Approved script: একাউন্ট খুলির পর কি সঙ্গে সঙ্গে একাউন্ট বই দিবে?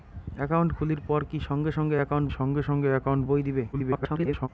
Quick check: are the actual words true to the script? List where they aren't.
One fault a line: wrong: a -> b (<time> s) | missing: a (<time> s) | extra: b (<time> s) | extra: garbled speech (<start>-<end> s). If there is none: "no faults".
extra: সঙ্গে সঙ্গে একাউন্ট (2.3 s)
extra: garbled speech (3.7-4.5 s)